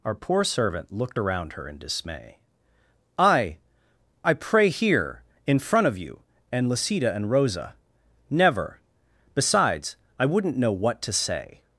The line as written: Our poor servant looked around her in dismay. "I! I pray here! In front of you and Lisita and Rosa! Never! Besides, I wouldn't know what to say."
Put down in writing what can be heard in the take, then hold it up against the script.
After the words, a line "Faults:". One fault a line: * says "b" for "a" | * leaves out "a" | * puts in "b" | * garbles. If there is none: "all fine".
Our poor servant looked around her in dismay. "I! I pray here! In front of you and Lisita and Rosa! Never! Besides, I wouldn't know what to say."
Faults:
all fine